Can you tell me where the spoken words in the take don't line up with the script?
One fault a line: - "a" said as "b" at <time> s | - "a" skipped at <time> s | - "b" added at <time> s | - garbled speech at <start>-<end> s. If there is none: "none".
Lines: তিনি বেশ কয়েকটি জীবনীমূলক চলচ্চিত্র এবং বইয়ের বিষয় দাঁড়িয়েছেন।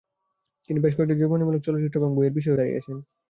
none